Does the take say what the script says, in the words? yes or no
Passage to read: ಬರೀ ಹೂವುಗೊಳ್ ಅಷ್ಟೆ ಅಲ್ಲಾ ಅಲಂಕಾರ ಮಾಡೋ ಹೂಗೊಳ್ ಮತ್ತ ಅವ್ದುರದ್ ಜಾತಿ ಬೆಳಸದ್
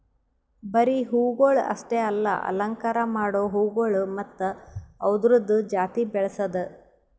yes